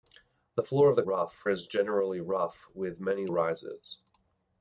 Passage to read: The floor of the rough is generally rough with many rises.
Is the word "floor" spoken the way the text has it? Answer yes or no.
yes